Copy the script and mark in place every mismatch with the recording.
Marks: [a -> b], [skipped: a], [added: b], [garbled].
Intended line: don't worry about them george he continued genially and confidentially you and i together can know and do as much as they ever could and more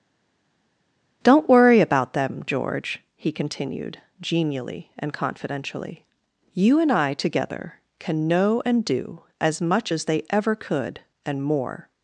don't worry about them george he continued genially and confidentially you and i together can know and do as much as they ever could and more